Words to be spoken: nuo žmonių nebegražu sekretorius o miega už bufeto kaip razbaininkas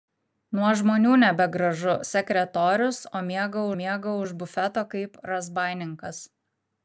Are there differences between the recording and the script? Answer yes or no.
yes